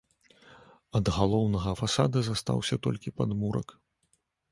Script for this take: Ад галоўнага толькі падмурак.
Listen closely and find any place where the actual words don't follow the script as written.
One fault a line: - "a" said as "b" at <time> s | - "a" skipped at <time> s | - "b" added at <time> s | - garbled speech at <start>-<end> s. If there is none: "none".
- "фасада застаўся" added at 1.8 s